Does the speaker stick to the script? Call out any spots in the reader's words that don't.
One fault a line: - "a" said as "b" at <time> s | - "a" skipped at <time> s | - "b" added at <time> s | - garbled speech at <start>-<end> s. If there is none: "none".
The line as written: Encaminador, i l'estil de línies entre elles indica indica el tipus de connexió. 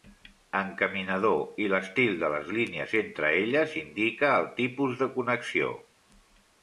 - "les" added at 2.4 s
- "indica" skipped at 4.3 s